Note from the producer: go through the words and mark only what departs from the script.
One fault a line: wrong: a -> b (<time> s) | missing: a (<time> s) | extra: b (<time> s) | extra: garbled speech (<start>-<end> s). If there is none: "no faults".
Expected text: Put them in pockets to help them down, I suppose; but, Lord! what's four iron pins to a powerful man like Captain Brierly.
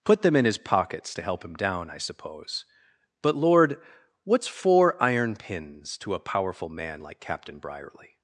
extra: his (0.5 s)
wrong: them -> him (1.4 s)